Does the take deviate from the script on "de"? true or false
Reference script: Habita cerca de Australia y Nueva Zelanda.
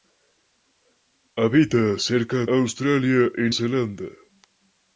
true